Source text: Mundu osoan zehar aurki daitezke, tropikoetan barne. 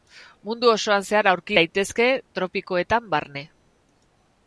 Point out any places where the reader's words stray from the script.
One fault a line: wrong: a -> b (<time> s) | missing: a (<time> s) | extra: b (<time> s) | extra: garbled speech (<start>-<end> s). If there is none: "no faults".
no faults